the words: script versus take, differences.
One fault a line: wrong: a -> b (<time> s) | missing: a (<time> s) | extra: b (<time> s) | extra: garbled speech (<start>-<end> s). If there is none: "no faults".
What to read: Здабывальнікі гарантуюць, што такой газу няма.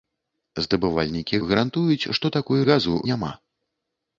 no faults